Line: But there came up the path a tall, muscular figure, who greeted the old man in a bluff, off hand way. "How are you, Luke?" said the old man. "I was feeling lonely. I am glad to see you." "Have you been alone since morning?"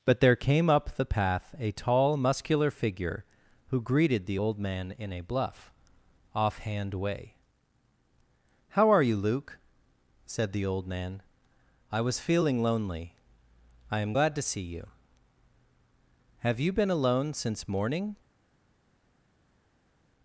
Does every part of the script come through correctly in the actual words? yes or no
yes